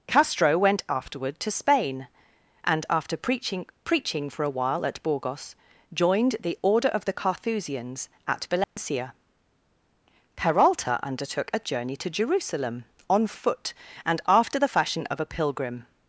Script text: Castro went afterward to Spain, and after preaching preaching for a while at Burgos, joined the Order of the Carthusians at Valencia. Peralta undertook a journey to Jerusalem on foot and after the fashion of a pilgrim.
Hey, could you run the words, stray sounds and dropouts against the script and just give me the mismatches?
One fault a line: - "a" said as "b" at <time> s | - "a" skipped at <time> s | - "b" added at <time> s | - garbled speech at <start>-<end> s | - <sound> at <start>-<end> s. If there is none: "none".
- dropout at 8.6-8.8 s